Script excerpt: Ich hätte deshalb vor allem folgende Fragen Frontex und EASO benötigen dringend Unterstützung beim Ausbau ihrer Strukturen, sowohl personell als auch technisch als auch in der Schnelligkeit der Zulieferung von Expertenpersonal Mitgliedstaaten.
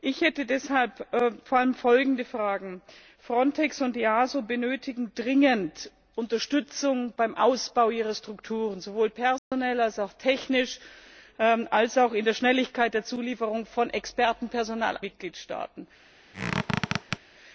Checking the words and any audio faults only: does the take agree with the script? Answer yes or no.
no